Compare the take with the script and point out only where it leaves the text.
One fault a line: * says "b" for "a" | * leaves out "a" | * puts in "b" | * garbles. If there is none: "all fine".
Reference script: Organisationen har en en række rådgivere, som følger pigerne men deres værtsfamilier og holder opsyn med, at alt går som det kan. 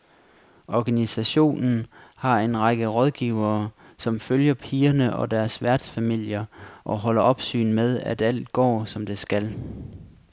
* leaves out "en"
* says "og" for "men"
* says "skal" for "kan"